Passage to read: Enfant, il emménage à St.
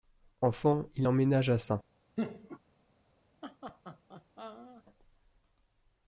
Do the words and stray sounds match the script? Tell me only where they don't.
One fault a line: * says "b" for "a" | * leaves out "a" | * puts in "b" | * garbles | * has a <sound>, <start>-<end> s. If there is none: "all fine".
* has a laugh, 2.2-2.6 s
* has a laugh, 3.4-4.8 s